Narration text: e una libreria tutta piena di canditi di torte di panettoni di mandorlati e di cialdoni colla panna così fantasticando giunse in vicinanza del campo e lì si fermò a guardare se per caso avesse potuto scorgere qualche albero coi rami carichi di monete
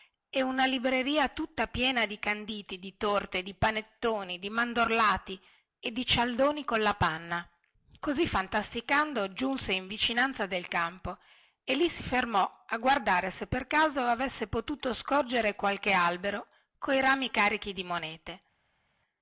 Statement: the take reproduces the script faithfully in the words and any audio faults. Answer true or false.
true